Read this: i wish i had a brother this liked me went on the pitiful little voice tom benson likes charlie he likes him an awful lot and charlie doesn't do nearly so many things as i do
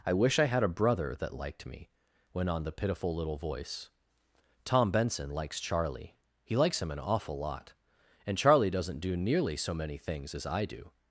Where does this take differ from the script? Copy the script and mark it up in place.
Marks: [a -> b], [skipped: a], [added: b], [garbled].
i wish i had a brother [this -> that] liked me went on the pitiful little voice tom benson likes charlie he likes him an awful lot and charlie doesn't do nearly so many things as i do